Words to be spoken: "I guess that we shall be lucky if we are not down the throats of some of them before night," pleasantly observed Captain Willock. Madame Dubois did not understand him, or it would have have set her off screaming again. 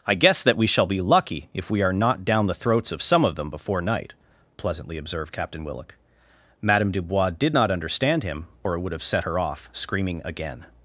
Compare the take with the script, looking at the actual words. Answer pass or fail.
fail